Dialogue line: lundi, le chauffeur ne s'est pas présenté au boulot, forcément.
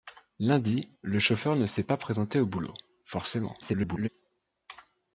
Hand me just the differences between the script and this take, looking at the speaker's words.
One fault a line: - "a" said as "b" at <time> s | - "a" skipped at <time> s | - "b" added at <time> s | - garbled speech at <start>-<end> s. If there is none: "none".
- garbled speech at 3.6-4.1 s